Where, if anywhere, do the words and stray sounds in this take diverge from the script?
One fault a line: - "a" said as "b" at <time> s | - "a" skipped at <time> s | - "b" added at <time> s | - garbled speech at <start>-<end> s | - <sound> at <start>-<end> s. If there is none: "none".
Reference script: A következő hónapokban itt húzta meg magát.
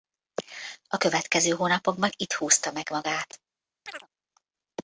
- chirp at 3.9-4.1 s